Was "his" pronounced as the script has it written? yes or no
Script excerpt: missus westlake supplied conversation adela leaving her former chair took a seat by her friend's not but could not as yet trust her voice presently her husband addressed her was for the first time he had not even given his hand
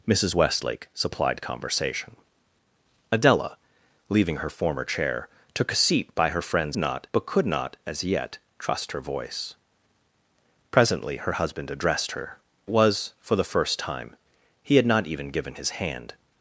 yes